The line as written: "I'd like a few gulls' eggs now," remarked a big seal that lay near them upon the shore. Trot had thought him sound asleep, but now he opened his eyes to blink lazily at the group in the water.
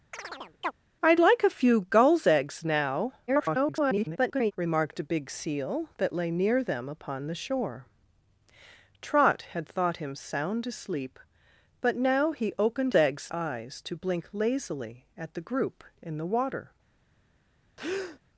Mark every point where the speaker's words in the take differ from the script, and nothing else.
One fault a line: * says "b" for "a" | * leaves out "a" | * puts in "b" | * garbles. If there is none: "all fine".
* garbles
* says "eggs" for "his"